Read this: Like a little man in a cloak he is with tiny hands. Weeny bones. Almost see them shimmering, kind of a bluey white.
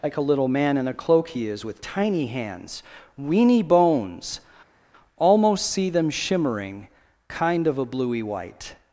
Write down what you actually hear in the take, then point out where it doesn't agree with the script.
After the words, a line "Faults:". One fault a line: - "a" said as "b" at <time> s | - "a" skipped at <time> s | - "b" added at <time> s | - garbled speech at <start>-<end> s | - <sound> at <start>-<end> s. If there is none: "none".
Like a little man in a cloak he is with tiny hands. Weeny bones. Almost see them shimmering, kind of a bluey white.
Faults:
none